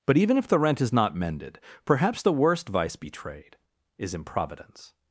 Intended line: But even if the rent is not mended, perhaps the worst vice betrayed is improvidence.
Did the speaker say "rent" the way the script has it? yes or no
yes